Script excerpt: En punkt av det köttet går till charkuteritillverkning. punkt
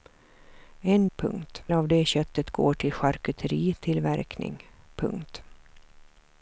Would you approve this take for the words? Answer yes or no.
yes